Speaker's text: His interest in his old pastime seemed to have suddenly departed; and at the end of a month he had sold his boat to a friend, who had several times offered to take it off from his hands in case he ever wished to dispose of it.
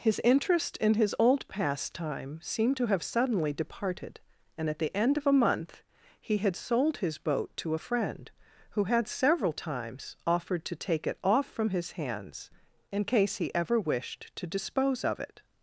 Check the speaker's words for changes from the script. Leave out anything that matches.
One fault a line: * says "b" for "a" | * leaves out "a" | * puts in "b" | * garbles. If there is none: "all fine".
all fine